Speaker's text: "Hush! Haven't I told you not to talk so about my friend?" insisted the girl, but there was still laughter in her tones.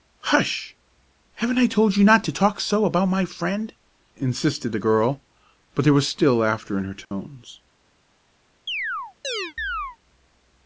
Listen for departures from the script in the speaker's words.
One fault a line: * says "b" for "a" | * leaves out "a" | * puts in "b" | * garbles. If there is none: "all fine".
all fine